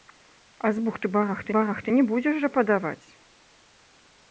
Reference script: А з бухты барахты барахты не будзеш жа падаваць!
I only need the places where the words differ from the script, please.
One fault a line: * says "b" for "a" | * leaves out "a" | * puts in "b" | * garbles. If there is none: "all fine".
all fine